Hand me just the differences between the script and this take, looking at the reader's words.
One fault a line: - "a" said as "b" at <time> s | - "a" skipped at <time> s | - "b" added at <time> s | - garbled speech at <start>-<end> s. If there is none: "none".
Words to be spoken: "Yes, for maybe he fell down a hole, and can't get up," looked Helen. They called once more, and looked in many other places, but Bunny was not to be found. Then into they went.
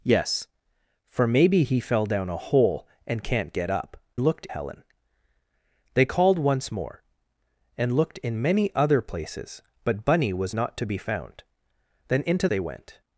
none